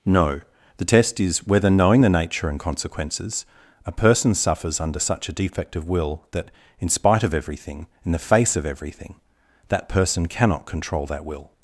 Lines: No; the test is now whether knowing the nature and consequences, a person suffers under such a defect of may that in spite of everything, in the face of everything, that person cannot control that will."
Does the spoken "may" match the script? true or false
false